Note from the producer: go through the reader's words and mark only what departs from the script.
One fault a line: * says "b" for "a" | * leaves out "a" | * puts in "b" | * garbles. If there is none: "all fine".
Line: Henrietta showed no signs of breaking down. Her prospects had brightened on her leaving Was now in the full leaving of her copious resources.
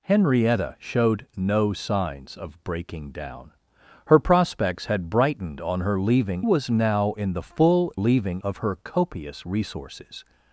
all fine